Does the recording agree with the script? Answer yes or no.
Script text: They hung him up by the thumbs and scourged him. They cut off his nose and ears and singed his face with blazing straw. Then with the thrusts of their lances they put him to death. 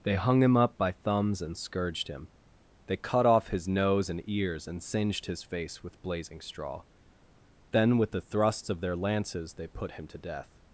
no